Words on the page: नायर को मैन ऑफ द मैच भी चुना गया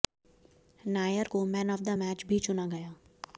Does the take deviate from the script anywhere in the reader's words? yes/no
no